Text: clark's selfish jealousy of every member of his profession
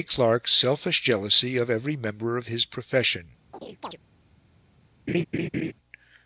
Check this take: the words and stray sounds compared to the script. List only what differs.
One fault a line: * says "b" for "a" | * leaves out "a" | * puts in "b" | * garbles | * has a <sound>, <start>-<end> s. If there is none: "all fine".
* has a chirp, 3.5-4.0 s
* has a laugh, 5.1-5.7 s